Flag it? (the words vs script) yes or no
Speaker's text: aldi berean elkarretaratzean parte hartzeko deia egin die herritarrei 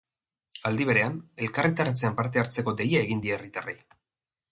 no